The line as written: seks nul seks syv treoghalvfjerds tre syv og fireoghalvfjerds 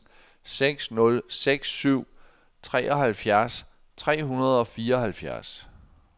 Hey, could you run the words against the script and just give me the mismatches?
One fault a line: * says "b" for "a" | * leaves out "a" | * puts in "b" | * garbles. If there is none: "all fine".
* says "hundrede" for "syv"